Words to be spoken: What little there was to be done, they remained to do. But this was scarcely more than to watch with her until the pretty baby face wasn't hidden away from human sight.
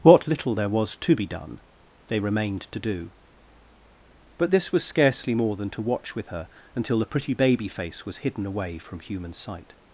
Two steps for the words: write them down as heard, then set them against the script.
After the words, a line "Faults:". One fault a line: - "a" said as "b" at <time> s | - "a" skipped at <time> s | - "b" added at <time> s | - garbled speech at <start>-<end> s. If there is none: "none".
What little there was to be done, they remained to do. But this was scarcely more than to watch with her until the pretty baby face was hidden away from human sight.
Faults:
- "wasn't" said as "was" at 8.1 s